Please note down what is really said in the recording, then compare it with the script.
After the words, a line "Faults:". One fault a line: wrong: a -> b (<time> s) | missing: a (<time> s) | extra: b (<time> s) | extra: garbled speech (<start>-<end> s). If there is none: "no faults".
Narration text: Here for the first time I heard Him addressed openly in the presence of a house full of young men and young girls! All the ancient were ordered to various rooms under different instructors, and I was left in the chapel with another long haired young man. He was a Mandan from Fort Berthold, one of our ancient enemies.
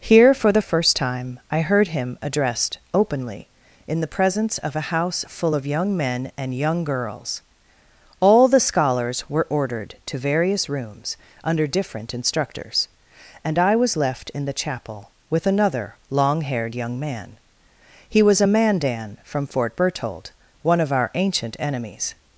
Here for the first time I heard Him addressed openly in the presence of a house full of young men and young girls! All the scholars were ordered to various rooms under different instructors, and I was left in the chapel with another long haired young man. He was a Mandan from Fort Berthold, one of our ancient enemies.
Faults:
wrong: ancient -> scholars (8.6 s)